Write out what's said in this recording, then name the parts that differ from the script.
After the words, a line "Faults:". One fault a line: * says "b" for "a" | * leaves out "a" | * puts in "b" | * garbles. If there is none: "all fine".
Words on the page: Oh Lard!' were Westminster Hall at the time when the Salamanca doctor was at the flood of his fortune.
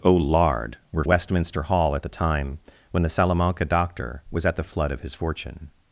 Oh Lard!' were Westminster Hall at the time when the Salamanca doctor was at the flood of his fortune.
Faults:
all fine